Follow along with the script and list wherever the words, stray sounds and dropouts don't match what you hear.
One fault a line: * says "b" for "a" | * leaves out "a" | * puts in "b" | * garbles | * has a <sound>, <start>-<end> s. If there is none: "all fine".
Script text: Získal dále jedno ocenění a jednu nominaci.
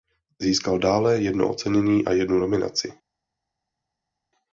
all fine